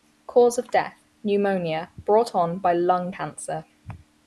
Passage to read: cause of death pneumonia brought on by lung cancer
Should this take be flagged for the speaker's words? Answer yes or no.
no